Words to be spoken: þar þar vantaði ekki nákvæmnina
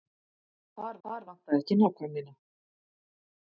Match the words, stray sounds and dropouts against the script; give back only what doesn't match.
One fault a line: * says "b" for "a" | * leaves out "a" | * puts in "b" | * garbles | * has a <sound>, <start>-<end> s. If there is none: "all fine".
all fine